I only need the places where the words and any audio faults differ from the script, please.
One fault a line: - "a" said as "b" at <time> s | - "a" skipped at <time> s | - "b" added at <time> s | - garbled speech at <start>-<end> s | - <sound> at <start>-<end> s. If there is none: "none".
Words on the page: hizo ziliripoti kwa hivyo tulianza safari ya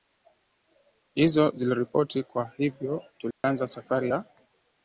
- dropout at 3.3-3.4 s